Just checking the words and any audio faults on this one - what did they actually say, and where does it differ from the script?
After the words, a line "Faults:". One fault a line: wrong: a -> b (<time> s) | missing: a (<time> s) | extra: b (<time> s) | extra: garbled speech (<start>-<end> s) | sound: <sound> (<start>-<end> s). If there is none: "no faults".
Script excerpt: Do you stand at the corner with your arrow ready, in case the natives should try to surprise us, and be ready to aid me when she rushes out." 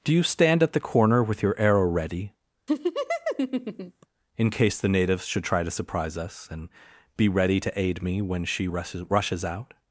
Do you stand at the corner with your arrow ready, in case the natives should try to surprise us, and be ready to aid me when she rushes rushes out."
Faults:
sound: laugh (2.7-4.1 s)
extra: rushes (9.1 s)